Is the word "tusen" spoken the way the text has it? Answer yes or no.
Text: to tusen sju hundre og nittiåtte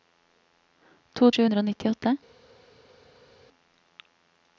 no